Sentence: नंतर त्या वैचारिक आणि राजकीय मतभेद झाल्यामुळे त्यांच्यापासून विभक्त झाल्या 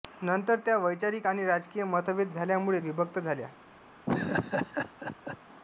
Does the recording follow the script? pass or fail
fail